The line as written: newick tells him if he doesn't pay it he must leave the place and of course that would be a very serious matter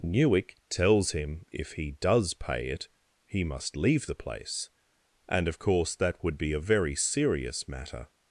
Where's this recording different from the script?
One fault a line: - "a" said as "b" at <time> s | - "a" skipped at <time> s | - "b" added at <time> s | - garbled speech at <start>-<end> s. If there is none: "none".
- "doesn't" said as "does" at 1.9 s